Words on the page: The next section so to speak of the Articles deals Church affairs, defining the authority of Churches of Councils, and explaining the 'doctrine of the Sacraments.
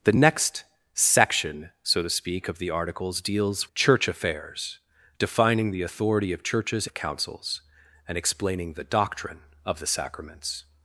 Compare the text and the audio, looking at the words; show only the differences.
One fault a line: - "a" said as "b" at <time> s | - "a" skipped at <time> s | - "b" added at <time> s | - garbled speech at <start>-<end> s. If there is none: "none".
none